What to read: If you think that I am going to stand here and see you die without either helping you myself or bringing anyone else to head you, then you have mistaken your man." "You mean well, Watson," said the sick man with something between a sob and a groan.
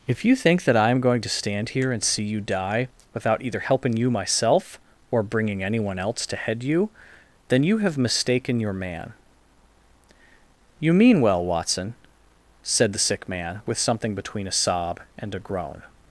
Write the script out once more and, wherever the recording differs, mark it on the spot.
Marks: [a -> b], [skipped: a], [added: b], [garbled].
If you think that I am going to stand here and see you die without either helping you myself or bringing anyone else to head you, then you have mistaken your man." "You mean well, Watson," said the sick man with something between a sob and a groan.